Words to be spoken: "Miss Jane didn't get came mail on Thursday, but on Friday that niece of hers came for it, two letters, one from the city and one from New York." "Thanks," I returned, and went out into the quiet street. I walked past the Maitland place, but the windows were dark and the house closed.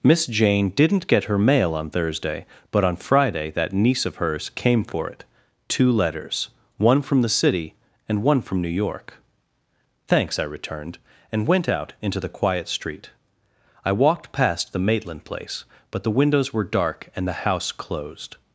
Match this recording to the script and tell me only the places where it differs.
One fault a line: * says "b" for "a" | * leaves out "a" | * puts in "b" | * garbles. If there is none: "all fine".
* says "her" for "came"